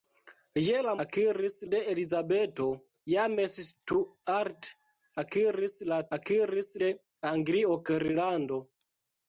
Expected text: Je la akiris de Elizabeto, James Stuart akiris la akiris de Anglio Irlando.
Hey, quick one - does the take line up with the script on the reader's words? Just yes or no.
yes